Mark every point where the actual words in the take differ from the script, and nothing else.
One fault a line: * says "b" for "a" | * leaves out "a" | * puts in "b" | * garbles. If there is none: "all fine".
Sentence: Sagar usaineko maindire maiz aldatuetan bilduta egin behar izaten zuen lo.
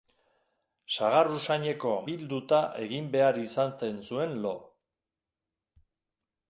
* leaves out "maindire maiz aldatuetan"